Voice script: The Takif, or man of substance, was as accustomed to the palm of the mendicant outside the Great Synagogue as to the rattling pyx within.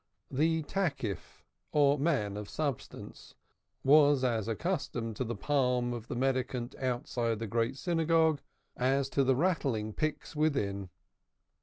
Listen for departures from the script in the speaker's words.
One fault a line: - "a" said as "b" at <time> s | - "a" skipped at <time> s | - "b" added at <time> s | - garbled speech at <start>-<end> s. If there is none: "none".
none